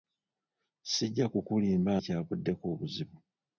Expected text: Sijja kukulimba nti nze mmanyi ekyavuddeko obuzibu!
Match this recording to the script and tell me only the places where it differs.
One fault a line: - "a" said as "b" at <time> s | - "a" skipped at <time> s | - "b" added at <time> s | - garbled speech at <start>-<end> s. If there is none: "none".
- "nti nze mmanyi" skipped at 1.9 s